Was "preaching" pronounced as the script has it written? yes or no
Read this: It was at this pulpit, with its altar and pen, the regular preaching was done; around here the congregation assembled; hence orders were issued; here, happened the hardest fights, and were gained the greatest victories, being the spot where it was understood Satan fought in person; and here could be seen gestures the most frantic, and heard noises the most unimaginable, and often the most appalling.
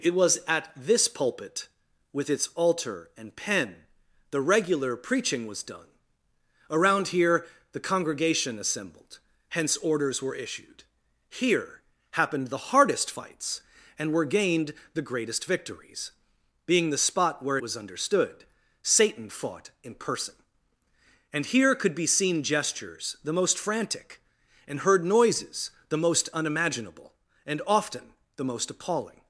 yes